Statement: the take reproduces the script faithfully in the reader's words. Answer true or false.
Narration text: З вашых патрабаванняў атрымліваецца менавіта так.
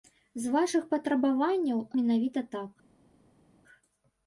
false